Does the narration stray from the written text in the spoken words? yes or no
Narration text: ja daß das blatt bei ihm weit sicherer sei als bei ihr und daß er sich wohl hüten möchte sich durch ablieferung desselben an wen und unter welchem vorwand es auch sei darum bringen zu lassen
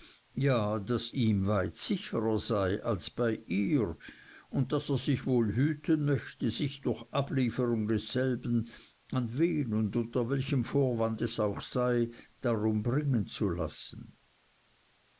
yes